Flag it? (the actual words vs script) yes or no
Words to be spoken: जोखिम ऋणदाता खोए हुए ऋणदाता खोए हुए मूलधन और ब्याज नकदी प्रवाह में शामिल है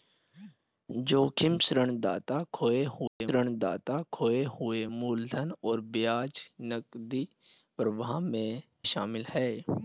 no